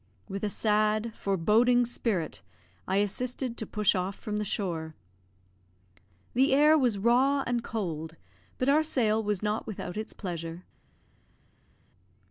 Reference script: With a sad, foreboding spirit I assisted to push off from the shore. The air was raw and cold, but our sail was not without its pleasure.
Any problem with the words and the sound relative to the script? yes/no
no